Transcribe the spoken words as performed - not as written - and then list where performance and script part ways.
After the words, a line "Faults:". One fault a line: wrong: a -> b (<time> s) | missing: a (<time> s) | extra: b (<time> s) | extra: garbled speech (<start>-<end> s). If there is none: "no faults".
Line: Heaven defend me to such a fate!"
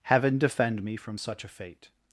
Heaven defend me from such a fate!"
Faults:
wrong: to -> from (0.9 s)